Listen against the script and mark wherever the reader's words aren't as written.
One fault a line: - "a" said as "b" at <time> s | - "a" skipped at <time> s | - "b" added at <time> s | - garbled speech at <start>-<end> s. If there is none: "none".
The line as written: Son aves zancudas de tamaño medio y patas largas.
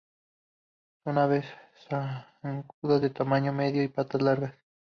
none